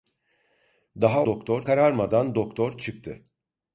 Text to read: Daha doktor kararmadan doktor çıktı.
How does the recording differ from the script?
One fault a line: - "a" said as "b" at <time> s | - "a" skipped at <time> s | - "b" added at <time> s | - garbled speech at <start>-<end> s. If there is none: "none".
none